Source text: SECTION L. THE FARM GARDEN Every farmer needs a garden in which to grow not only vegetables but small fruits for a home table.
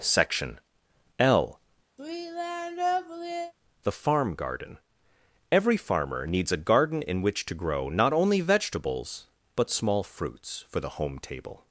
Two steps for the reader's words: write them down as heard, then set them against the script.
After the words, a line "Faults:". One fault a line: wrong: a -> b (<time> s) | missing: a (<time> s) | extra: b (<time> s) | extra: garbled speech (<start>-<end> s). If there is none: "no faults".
SECTION L. THE FARM GARDEN Every farmer needs a garden in which to grow not only vegetables but small fruits for the home table.
Faults:
wrong: a -> the (10.8 s)